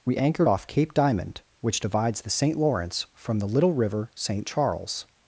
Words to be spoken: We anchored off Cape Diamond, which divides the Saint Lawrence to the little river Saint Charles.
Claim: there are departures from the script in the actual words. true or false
true